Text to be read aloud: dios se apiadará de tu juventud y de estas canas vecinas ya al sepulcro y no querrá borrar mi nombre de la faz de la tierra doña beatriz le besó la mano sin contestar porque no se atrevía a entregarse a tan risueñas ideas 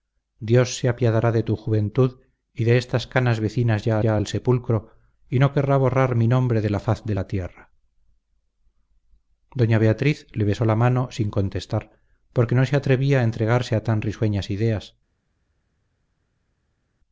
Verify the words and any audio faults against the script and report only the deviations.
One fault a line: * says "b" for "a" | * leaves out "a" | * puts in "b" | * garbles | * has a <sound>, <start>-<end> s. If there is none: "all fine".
* puts in "ya"